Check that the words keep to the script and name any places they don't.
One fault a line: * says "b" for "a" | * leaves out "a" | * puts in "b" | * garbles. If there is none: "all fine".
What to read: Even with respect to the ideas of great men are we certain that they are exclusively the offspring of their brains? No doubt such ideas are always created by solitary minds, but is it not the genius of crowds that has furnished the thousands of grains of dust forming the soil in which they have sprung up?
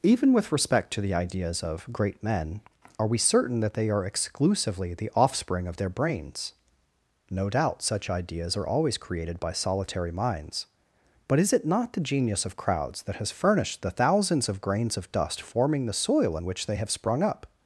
all fine